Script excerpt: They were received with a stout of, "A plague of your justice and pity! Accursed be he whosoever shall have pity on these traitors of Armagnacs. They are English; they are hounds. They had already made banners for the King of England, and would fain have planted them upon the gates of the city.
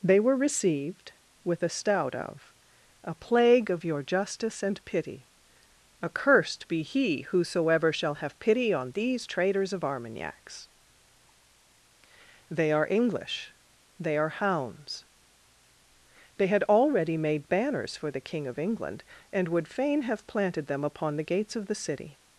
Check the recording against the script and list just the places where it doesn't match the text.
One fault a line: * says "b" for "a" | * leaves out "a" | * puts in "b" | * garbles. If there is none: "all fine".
all fine